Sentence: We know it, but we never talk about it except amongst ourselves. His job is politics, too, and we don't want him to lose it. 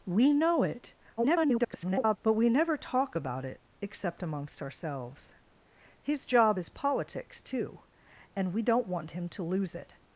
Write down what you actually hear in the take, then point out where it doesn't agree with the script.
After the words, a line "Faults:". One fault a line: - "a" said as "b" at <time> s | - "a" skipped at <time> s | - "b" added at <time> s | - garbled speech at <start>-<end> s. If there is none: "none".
We know it, [garbled] but we never talk about it except amongst ourselves. His job is politics, too, and we don't want him to lose it.
Faults:
- garbled speech at 1.2-2.2 s